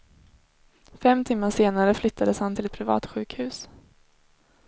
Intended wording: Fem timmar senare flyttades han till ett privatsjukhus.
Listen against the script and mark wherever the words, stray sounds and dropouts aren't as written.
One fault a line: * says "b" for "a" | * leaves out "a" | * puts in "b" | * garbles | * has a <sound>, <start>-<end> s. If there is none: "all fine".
all fine